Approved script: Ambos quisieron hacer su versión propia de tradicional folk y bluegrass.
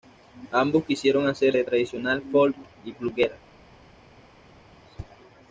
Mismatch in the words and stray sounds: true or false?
true